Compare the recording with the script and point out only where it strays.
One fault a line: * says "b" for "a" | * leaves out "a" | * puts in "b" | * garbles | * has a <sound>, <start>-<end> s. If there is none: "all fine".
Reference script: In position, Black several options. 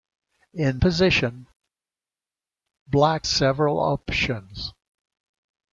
all fine